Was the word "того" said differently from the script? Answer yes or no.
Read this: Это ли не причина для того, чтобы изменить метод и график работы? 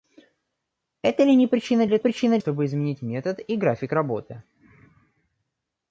yes